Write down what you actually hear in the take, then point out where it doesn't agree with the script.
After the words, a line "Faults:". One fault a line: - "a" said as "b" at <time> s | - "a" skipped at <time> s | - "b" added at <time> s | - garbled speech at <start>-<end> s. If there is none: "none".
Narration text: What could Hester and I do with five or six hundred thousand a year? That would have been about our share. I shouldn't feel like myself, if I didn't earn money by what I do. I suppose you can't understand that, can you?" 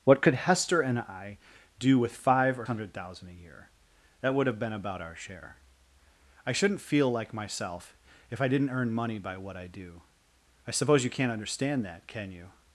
What could Hester and I do with five or hundred thousand a year? That would have been about our share. I shouldn't feel like myself, if I didn't earn money by what I do. I suppose you can't understand that, can you?"
Faults:
- "six" skipped at 2.7 s